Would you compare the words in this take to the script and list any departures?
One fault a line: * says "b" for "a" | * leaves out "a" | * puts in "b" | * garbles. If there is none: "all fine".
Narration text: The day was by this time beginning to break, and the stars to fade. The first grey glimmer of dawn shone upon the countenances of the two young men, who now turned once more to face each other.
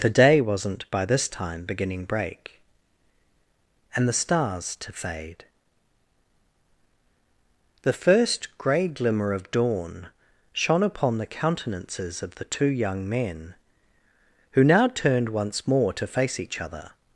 * says "wasn't" for "was"
* leaves out "to"